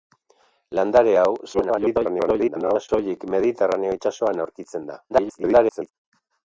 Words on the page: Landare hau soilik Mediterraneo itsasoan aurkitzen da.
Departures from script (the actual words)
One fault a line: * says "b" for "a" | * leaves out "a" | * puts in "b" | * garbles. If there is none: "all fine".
* garbles
* garbles